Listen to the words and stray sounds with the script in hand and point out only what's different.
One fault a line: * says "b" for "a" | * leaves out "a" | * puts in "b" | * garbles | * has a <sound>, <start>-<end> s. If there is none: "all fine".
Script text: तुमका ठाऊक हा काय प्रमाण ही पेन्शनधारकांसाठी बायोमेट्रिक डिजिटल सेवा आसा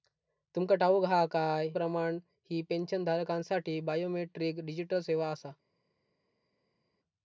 all fine